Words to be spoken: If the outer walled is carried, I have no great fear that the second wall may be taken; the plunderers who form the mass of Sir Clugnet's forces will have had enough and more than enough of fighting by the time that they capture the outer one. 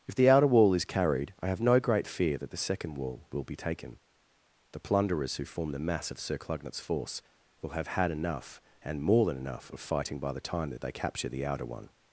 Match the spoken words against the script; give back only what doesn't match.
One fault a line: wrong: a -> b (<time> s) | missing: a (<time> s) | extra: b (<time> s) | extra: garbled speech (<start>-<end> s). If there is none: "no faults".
wrong: walled -> wall (0.5 s)
wrong: may -> will (3.3 s)
wrong: forces -> force (6.8 s)